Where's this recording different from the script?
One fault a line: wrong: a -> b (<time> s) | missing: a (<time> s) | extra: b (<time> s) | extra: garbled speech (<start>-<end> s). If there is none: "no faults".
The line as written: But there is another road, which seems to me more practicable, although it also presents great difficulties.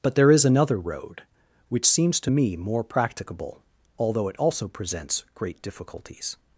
no faults